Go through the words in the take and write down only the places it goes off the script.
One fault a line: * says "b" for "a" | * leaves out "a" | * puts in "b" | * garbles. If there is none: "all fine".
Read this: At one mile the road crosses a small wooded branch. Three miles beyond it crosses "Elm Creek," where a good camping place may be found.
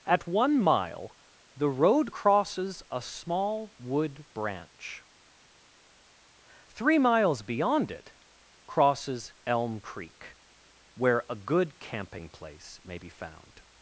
* says "wood" for "wooded"